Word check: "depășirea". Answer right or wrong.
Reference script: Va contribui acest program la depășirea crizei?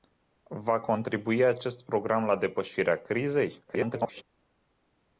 right